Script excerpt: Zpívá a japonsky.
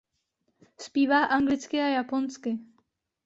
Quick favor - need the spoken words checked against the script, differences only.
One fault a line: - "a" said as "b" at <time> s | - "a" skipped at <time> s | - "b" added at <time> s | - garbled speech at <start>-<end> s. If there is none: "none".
- "anglicky" added at 1.2 s